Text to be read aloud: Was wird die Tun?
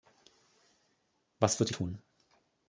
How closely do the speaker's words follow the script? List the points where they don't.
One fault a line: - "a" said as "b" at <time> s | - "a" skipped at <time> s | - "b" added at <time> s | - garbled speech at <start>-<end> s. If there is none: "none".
none